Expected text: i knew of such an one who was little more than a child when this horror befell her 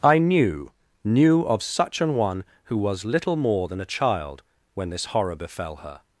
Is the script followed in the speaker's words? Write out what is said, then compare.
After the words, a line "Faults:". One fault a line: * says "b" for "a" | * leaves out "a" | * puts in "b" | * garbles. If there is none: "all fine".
i knew knew of such an one who was little more than a child when this horror befell her
Faults:
* puts in "knew"